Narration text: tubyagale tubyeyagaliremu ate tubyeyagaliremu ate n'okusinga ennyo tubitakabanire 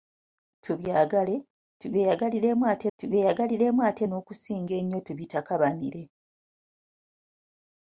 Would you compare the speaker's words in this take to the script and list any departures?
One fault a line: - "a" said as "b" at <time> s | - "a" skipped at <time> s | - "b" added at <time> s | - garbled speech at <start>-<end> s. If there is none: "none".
none